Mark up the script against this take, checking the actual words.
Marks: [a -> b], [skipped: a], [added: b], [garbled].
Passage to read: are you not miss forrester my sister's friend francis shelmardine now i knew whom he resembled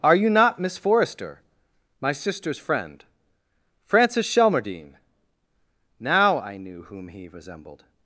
are you not miss forrester my sister's friend francis shelmardine now i knew whom he resembled